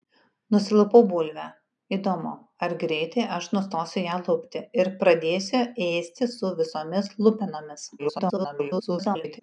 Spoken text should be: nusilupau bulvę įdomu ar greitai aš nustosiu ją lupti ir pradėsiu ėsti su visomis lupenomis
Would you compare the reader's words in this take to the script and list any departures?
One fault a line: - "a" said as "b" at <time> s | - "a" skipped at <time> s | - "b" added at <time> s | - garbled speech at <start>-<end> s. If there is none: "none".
- garbled speech at 8.0-9.4 s